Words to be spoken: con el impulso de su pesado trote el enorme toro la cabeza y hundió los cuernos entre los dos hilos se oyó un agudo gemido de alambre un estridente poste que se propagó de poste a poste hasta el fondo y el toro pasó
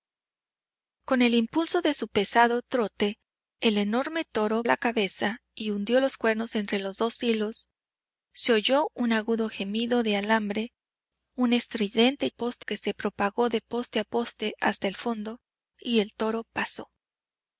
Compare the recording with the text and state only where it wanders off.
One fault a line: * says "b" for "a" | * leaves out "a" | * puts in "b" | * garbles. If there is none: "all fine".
all fine